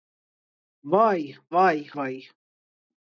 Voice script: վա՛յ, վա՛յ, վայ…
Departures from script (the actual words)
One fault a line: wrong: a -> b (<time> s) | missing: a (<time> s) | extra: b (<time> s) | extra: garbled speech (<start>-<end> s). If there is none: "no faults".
no faults